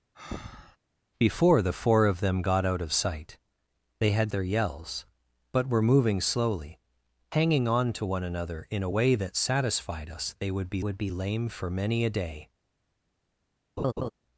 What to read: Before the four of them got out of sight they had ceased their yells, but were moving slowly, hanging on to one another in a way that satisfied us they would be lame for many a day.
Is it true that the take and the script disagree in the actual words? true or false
true